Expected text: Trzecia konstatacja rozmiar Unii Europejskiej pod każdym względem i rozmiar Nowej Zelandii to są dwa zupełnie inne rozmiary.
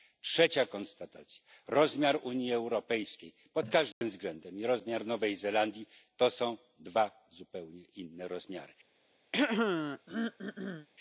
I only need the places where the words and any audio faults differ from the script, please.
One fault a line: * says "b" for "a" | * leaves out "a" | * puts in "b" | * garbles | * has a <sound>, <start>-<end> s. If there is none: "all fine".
* has a dropout, 3.9-4.0 s
* has a throat clearing, 9.3-10.9 s